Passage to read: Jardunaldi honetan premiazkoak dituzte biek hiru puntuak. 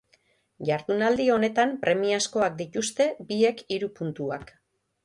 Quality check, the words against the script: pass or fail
pass